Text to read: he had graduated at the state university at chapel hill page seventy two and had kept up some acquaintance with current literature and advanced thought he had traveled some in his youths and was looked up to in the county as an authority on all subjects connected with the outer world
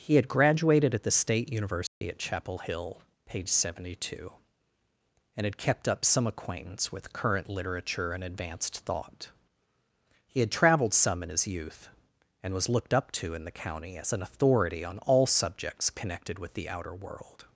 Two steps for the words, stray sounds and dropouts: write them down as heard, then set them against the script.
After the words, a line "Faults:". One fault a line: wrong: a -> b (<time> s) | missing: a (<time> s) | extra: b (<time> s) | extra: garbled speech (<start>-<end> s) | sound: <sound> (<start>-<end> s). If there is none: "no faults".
he had graduated at the state university at chapel hill page seventy two and had kept up some acquaintance with current literature and advanced thought he had traveled some in his youth and was looked up to in the county as an authority on all subjects connected with the outer world
Faults:
sound: dropout (1.9-2.0 s)
wrong: youths -> youth (11.5 s)